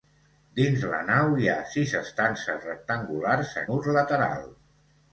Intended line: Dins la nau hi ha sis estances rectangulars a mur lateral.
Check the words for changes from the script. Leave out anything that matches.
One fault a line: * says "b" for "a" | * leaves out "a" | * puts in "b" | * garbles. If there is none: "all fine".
all fine